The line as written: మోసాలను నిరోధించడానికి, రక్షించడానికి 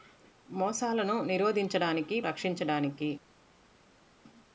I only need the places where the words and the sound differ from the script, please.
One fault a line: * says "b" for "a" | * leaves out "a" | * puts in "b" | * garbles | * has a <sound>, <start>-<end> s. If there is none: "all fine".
all fine